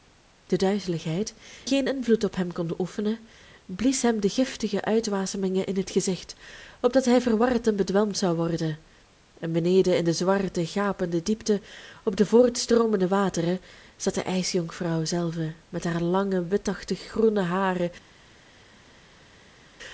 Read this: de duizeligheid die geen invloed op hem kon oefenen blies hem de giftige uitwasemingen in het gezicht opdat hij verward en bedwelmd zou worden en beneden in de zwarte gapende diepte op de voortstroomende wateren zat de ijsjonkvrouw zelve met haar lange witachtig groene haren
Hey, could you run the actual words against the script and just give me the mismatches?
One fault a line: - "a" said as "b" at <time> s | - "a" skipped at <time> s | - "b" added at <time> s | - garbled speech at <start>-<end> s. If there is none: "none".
- "die" skipped at 1.3 s